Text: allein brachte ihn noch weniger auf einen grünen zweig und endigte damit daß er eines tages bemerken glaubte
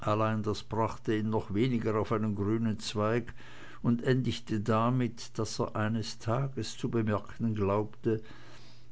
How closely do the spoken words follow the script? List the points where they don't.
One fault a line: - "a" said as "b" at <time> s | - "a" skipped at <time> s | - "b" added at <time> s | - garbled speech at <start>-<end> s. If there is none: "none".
- "das" added at 0.4 s
- "zu" added at 6.8 s